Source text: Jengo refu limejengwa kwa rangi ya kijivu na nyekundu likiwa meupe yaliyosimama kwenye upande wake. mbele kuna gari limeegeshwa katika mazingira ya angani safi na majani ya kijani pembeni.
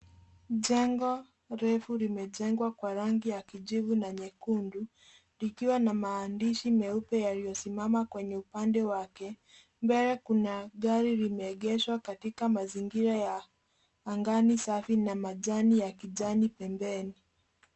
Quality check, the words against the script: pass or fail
fail